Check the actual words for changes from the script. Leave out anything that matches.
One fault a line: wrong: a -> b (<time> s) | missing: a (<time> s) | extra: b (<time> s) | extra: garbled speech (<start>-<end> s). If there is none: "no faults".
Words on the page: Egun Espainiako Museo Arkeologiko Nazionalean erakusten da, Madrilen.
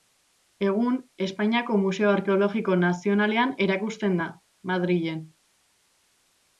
no faults